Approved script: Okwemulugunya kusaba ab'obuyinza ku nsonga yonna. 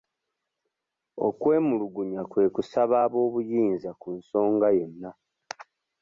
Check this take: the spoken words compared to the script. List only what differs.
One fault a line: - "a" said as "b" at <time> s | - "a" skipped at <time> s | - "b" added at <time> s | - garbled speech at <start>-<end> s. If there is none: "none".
- "kwe" added at 2.3 s